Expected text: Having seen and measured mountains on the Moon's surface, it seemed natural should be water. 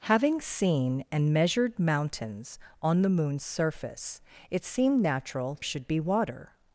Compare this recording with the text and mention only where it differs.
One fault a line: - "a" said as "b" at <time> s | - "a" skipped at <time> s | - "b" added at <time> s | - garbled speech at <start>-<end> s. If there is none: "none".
none